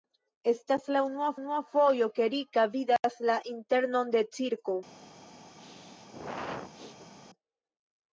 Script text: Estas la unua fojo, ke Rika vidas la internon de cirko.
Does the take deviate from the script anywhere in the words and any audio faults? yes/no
yes